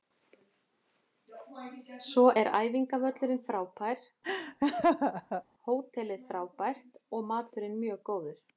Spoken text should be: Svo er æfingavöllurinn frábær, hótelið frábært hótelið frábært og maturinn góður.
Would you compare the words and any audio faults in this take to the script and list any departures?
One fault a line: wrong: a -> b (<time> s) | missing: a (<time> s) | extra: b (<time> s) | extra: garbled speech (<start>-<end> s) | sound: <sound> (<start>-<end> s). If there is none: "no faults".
sound: laugh (4.2-5.4 s)
missing: hótelið frábært (7.0 s)
extra: mjög (7.9 s)